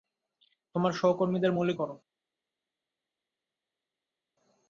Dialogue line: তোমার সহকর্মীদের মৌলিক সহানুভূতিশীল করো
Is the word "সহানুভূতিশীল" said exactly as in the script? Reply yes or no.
no